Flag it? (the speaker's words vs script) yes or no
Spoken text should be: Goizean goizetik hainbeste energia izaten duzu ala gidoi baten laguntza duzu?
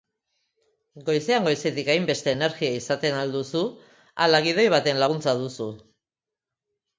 yes